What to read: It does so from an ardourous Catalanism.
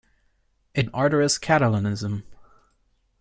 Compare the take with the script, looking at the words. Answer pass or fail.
fail